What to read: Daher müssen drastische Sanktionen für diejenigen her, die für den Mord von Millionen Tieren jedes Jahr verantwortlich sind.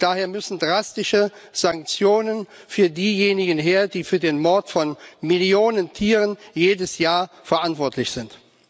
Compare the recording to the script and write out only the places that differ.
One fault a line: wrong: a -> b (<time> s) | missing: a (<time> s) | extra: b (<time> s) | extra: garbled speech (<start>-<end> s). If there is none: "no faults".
no faults